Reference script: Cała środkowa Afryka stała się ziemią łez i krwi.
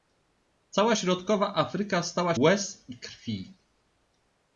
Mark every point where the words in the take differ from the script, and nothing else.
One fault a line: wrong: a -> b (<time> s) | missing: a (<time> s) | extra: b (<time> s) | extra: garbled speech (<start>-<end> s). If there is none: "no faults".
missing: się ziemią (2.3 s)